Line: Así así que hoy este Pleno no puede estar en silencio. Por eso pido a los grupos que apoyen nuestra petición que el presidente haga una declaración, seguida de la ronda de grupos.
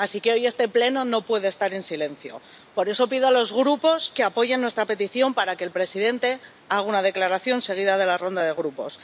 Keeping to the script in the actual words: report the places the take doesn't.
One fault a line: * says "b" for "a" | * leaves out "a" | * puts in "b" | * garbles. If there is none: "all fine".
* leaves out "así"
* puts in "para"